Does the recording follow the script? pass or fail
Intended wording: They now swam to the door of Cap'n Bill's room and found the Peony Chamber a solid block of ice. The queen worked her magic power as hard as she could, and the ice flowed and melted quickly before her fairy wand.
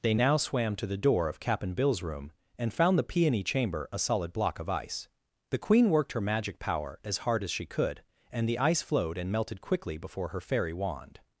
pass